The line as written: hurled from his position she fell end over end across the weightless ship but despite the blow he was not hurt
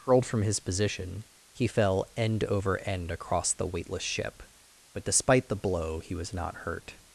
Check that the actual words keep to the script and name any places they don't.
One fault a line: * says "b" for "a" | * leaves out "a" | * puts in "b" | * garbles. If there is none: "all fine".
* says "he" for "she"